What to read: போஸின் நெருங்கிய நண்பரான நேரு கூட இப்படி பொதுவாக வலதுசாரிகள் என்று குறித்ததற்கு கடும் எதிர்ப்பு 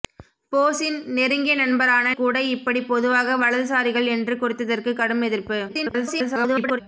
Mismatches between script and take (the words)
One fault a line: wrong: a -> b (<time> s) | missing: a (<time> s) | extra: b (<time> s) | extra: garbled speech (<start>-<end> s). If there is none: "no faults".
missing: நேரு (2.1 s)
extra: garbled speech (5.7-6.8 s)